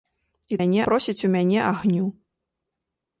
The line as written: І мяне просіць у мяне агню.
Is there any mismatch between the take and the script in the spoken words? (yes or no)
no